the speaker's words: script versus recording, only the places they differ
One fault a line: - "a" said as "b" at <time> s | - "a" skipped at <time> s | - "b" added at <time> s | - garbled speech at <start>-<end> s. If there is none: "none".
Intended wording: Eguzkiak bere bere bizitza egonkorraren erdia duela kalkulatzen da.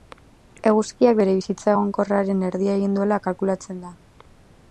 - "bere" skipped at 1.4 s
- "egin" added at 2.8 s